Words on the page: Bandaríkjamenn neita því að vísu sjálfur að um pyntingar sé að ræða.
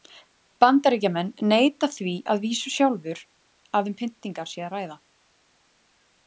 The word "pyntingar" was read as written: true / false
true